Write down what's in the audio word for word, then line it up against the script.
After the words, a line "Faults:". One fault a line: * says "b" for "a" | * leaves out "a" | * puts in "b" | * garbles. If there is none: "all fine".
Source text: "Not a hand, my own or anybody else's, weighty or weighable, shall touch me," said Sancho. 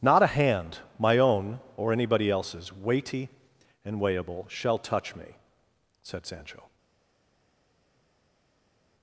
"Not a hand, my own or anybody else's, weighty and weighable, shall touch me," said Sancho.
Faults:
* says "and" for "or"